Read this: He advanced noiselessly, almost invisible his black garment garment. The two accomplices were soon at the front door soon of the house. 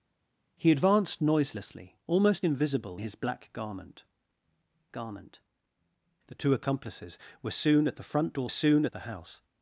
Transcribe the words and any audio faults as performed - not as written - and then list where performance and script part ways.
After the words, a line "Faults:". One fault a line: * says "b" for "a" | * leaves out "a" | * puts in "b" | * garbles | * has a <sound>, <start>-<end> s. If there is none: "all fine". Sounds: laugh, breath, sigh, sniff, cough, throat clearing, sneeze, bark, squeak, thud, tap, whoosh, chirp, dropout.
He advanced noiselessly, almost invisible his black garment garment. The two accomplices were soon at the front door soon of the house.
Faults:
all fine